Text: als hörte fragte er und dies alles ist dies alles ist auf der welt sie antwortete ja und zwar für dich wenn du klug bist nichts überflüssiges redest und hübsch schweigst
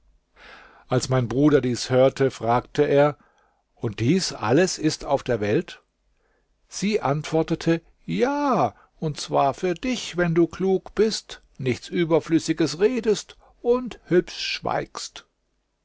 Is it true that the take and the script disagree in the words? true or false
true